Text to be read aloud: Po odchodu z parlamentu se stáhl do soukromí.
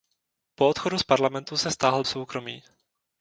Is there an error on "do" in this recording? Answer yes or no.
yes